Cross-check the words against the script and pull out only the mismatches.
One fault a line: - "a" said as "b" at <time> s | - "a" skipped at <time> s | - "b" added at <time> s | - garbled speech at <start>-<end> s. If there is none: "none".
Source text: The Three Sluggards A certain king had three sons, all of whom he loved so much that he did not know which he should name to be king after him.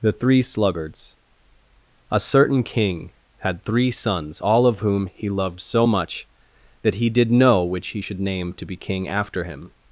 - "not" skipped at 7.3 s